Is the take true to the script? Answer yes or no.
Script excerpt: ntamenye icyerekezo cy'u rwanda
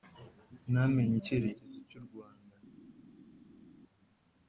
yes